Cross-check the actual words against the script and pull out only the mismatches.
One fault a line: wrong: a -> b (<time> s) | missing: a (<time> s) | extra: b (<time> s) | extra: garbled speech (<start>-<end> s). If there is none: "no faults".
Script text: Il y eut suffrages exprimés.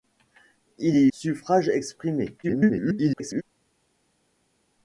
missing: eut (1.1 s)
extra: garbled speech (2.4-3.4 s)